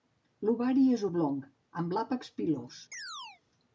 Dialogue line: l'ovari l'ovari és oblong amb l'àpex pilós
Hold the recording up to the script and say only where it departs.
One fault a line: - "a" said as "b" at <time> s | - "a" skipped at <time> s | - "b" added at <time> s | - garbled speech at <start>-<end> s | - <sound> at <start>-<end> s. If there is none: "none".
- "l'ovari" skipped at 0.8 s
- chirp at 2.9-3.4 s